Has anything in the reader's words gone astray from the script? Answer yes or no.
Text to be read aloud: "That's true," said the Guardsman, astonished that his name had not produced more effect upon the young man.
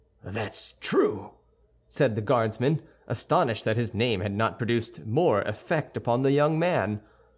no